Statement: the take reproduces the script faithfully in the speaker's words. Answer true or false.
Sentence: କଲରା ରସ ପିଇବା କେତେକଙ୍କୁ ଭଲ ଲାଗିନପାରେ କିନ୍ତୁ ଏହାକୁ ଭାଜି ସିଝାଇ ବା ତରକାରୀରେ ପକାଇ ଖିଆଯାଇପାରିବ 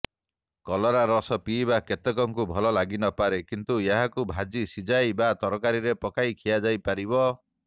true